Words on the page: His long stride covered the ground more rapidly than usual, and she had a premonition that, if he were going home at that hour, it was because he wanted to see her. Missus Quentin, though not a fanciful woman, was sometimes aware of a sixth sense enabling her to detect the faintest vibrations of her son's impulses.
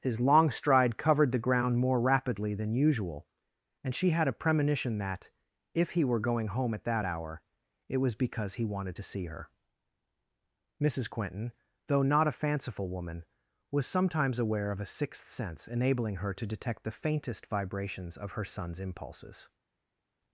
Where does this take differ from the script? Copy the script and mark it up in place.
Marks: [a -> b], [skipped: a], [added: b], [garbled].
His long stride covered the ground more rapidly than usual, and she had a premonition that, if he were going home at that hour, it was because he wanted to see her. Missus Quentin, though not a fanciful woman, was sometimes aware of a sixth sense enabling her to detect the faintest vibrations of her son's impulses.